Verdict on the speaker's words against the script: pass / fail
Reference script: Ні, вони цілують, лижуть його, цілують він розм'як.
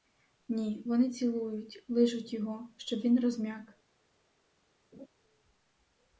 fail